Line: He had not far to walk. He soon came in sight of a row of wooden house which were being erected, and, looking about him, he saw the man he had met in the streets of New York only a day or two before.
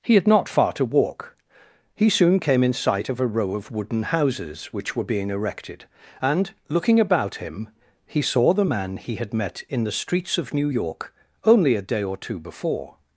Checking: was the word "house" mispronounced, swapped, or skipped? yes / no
yes